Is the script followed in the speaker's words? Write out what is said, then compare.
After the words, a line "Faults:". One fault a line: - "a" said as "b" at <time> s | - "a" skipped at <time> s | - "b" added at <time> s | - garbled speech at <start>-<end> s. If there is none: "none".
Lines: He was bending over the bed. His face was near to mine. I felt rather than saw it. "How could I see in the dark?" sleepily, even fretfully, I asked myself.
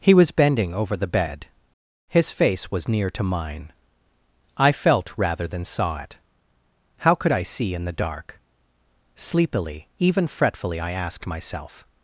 He was bending over the bed. His face was near to mine. I felt rather than saw it. "How could I see in the dark?" sleepily, even fretfully, I asked myself.
Faults:
none